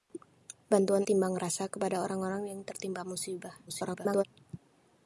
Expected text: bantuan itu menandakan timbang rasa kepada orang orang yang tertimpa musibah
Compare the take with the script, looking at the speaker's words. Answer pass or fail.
fail